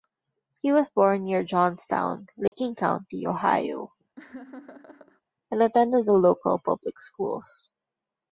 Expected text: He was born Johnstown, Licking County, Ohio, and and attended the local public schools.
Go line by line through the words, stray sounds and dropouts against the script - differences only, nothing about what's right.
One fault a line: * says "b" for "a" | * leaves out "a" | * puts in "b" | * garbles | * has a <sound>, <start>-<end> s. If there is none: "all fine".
* puts in "near"
* has a dropout, 2.5-2.5 s
* has a laugh, 4.2-5.2 s
* leaves out "and"